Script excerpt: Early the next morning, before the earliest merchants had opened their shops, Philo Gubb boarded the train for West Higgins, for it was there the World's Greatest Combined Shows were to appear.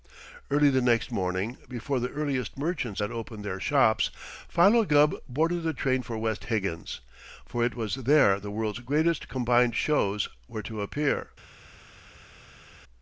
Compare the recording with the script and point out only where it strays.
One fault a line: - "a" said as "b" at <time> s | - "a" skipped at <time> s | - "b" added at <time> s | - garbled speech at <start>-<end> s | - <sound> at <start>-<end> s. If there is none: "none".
none